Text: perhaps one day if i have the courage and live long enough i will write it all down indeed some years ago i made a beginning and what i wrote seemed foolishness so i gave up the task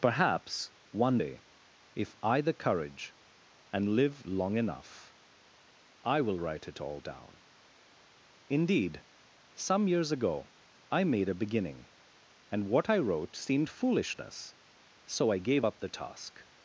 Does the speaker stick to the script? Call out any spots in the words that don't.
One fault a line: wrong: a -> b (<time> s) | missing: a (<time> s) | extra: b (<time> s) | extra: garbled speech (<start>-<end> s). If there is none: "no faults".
missing: have (2.4 s)